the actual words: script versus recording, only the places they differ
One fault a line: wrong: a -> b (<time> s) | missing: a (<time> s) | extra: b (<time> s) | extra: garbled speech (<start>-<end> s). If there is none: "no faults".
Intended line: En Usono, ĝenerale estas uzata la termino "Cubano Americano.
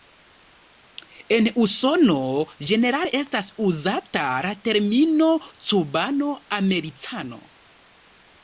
no faults